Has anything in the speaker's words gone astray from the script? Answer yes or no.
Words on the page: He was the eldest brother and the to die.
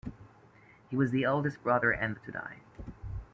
no